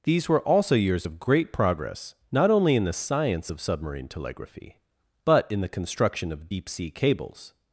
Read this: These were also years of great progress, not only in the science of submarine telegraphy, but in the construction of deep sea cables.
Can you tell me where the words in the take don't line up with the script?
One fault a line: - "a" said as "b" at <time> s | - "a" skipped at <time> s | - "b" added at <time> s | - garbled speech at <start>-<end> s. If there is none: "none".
none